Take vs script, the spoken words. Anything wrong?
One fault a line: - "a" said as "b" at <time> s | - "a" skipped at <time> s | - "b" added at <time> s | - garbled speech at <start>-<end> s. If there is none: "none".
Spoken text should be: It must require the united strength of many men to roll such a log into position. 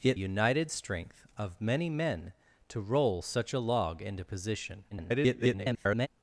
- "must require the" skipped at 0.2 s
- garbled speech at 4.9-6.1 s